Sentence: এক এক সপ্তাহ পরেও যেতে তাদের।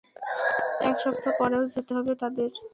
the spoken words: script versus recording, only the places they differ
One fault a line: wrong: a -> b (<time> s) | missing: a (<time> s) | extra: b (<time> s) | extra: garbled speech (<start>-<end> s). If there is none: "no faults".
missing: এক (0.9 s)
extra: হবে (1.9 s)